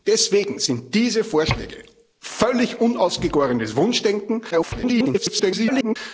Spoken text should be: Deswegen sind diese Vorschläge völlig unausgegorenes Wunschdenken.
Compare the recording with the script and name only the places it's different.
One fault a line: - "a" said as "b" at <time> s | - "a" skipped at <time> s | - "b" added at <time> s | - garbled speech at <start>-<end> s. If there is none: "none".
- garbled speech at 4.5-6.0 s